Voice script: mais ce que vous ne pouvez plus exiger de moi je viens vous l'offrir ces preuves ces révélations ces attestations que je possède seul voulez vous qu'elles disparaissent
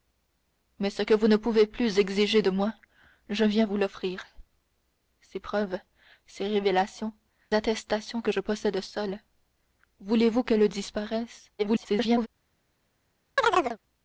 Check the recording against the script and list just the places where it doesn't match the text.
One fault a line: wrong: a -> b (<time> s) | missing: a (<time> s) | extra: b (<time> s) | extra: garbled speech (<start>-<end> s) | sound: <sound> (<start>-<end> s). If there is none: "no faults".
missing: ces (7.1 s)
extra: garbled speech (11.6-12.3 s)
sound: chirp (13.4-13.8 s)